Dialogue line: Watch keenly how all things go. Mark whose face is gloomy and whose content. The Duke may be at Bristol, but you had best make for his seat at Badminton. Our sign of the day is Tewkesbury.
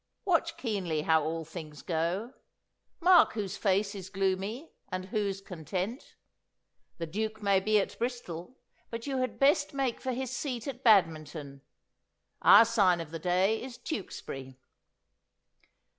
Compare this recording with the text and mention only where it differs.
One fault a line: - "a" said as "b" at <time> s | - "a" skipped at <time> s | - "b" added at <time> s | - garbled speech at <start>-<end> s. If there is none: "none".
none